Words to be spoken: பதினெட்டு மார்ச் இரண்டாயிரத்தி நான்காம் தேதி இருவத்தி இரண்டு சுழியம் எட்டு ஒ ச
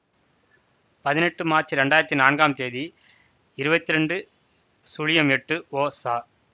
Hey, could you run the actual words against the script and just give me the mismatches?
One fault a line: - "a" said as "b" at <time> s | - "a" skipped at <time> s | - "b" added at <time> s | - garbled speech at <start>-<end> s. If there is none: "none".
none